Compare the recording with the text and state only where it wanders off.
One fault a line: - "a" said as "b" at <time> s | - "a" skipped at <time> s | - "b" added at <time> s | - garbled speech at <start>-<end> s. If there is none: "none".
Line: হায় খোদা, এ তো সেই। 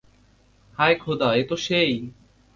none